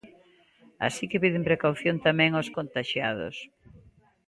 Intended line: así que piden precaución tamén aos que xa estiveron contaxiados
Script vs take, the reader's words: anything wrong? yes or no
yes